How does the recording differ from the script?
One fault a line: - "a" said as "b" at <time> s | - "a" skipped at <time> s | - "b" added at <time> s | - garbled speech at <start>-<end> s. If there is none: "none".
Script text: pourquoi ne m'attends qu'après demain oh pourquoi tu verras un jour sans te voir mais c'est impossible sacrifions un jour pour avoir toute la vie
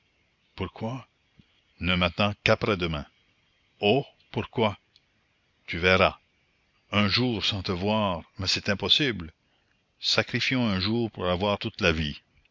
none